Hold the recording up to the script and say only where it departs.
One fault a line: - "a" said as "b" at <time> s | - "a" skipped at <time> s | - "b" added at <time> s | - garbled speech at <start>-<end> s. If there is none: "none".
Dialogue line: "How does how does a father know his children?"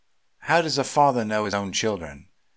- "how does" skipped at 0.8 s
- "own" added at 1.5 s